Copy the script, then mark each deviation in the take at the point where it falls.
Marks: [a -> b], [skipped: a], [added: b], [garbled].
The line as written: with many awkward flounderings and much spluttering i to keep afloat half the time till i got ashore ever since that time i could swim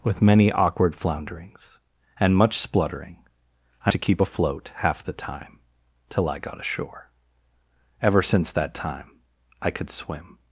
with many awkward flounderings and much spluttering i to keep afloat half the time till i got ashore ever since that time i could swim